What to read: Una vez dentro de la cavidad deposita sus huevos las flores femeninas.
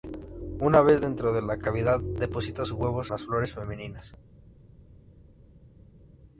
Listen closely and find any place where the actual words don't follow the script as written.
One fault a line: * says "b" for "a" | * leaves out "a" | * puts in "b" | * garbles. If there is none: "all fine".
all fine